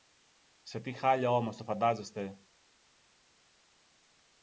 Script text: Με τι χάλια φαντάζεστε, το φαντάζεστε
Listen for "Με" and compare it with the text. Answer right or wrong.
wrong